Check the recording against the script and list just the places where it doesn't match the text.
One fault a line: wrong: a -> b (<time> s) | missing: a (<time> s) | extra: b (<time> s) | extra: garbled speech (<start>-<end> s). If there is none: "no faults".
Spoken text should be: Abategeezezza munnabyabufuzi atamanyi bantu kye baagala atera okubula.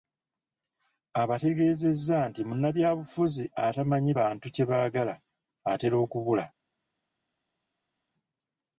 extra: nti (2.3 s)